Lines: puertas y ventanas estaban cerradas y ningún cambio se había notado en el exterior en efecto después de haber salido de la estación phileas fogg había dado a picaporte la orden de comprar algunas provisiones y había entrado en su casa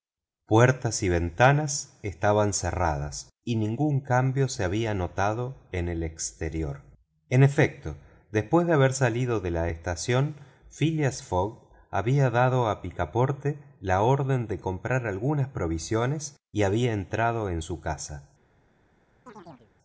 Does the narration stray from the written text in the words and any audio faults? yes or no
yes